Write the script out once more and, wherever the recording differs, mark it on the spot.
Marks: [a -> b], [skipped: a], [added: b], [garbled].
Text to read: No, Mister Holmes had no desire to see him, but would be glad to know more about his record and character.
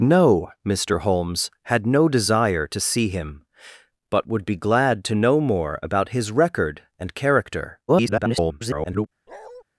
No, Mister Holmes had no desire to see him, but would be glad to know more about his record and character. [garbled]